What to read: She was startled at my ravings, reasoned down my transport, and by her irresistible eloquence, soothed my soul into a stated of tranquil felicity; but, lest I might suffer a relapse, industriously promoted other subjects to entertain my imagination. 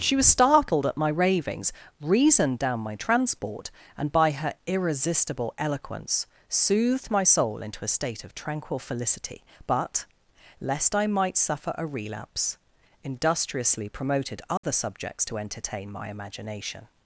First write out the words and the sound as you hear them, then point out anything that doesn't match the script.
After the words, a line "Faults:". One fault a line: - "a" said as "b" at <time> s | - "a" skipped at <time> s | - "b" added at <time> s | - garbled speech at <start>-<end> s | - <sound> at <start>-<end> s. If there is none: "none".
She was startled at my ravings, reasoned down my transport, and by her irresistible eloquence, soothed my soul into a state of tranquil felicity; but, lest I might suffer a relapse, industriously promoted other subjects to entertain my imagination.
Faults:
- "stated" said as "state" at 7.9 s
- dropout at 14.6-14.6 s